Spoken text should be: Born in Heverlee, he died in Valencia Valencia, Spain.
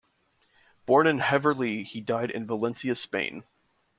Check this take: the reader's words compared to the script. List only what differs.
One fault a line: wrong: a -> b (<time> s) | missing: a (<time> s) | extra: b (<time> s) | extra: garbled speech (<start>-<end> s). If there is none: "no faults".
missing: Valencia (3.0 s)